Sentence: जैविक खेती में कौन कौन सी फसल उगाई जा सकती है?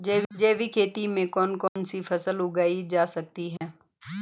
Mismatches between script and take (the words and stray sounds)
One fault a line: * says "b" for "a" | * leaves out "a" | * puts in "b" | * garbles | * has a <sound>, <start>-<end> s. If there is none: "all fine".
* has a dropout, 1.7-1.8 s
* has a dropout, 3.6-3.6 s